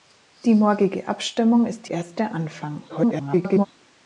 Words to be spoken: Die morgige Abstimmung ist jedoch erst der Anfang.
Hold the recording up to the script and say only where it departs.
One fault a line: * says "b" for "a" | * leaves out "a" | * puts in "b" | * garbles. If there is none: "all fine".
* leaves out "jedoch"
* garbles